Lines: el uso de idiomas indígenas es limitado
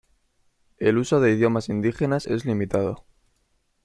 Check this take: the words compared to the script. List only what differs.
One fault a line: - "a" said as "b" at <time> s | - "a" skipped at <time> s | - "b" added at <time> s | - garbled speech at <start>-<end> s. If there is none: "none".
none